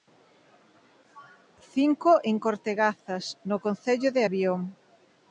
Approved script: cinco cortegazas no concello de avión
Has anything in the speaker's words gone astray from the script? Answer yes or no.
yes